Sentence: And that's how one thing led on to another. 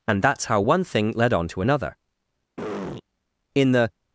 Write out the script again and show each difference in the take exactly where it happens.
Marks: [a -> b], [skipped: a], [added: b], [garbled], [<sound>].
And that's how one thing led on to another. [throat clearing] [added: In the]